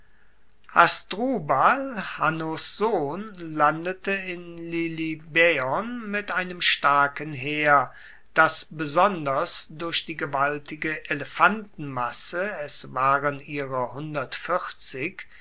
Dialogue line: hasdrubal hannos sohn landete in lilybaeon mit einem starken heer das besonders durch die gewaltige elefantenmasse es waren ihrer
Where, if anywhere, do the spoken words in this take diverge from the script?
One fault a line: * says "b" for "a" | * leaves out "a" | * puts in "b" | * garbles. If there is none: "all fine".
all fine